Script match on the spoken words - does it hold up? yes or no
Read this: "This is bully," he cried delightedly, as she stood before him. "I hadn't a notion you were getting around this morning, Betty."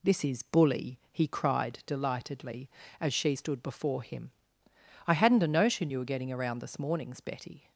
no